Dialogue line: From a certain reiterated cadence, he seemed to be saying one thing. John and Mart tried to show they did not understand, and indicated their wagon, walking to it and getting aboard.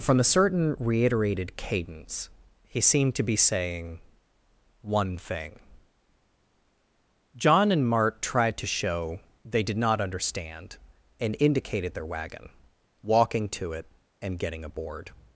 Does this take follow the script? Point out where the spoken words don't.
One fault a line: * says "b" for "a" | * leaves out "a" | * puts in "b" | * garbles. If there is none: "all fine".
all fine